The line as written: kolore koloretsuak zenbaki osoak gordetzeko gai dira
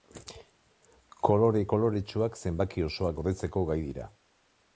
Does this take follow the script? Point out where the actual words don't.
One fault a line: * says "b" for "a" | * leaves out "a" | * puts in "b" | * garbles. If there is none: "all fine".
all fine